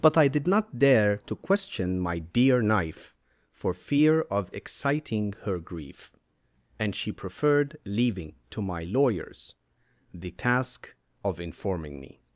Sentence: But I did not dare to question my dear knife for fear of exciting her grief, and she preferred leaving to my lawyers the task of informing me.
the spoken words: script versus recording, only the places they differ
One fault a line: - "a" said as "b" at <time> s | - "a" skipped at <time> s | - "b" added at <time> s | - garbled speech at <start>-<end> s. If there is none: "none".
none